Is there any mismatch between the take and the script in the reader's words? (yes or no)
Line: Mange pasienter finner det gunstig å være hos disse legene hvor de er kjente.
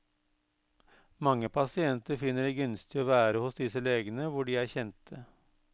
no